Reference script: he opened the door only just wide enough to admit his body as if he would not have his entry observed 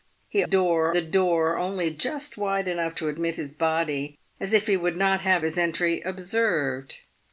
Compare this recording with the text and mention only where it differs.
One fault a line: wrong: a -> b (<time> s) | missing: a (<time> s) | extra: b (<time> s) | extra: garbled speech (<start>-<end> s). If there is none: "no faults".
wrong: opened -> door (0.4 s)